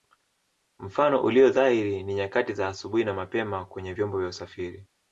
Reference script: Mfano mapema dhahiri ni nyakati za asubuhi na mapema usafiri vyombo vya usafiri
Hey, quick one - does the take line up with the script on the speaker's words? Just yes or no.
no